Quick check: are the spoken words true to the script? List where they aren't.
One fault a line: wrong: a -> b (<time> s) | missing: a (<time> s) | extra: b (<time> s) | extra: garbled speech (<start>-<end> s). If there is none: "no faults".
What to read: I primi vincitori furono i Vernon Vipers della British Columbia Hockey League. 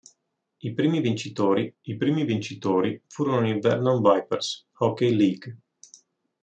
extra: I primi vincitori (1.8 s)
missing: della British Columbia (4.7 s)